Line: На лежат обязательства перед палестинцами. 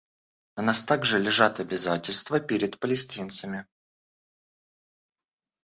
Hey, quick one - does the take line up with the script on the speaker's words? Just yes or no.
no